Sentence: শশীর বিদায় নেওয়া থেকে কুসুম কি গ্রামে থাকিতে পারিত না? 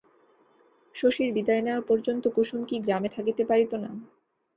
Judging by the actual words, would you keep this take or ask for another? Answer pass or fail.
fail